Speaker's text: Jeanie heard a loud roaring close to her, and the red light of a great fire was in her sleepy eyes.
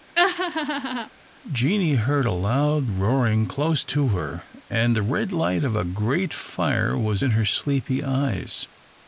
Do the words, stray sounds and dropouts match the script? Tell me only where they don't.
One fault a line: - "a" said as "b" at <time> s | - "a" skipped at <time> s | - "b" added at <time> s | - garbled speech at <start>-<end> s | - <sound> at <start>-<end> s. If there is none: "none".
- laugh at 0.2-1.1 s